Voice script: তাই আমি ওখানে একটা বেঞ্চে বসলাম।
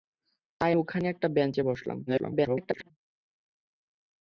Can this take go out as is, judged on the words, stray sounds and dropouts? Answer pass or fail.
fail